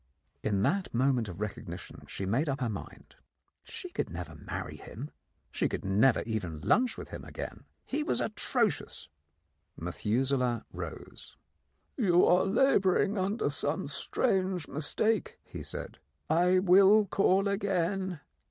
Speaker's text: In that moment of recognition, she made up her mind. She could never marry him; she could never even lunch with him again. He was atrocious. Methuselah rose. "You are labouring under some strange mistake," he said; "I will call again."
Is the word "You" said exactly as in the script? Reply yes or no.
yes